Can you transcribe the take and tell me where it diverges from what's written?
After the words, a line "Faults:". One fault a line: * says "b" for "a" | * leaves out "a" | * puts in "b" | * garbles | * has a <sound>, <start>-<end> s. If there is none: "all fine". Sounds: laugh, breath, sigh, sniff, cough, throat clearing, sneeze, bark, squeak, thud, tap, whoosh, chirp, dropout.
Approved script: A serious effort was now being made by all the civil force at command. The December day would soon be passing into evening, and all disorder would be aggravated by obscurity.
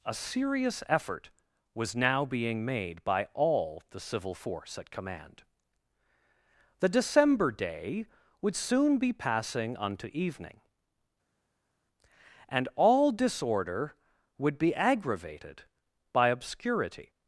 A serious effort was now being made by all the civil force at command. The December day would soon be passing unto evening, and all disorder would be aggravated by obscurity.
Faults:
* says "unto" for "into"